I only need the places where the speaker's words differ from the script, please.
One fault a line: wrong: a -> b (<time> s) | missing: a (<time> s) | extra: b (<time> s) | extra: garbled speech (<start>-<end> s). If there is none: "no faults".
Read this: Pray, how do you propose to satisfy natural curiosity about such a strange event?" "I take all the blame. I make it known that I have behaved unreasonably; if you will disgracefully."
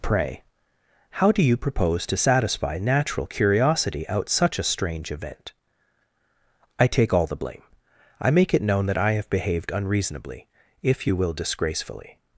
wrong: about -> out (4.1 s)